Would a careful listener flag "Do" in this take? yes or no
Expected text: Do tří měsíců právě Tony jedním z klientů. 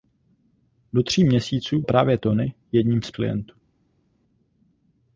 no